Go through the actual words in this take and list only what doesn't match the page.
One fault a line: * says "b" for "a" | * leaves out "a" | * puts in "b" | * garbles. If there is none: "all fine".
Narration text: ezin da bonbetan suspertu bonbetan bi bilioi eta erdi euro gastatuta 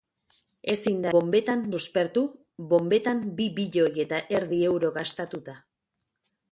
all fine